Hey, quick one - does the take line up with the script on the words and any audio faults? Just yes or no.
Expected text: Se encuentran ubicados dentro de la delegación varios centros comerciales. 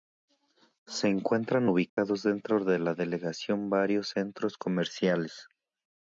no